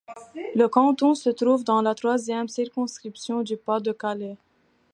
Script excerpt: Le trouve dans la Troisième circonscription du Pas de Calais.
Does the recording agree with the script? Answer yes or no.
no